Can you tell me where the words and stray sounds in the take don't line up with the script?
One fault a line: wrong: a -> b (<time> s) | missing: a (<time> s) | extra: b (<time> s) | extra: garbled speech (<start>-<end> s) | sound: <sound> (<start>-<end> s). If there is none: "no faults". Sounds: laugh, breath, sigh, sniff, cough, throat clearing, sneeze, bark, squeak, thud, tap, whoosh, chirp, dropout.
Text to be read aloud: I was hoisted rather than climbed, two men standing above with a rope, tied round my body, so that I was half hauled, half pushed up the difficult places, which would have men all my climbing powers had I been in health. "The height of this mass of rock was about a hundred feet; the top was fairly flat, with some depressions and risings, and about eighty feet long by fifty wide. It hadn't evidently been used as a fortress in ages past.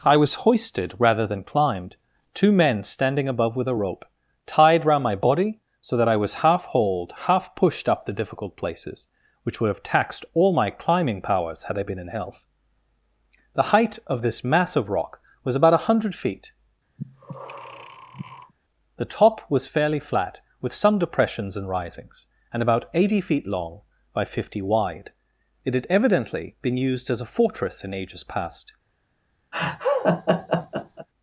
wrong: men -> taxed (9.8 s)
sound: breath (17.0-18.5 s)
wrong: hadn't -> had (25.7 s)
sound: laugh (29.5-31.1 s)